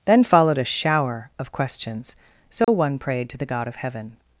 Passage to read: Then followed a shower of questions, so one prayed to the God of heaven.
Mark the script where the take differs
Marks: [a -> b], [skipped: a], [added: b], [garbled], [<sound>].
Then followed a shower of questions, so [dropout] one prayed to the God of heaven.